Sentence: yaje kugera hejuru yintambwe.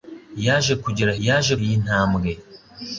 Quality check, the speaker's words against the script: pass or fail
fail